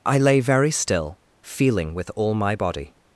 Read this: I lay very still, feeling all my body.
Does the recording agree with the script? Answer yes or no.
no